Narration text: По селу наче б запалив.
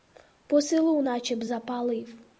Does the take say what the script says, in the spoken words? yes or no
yes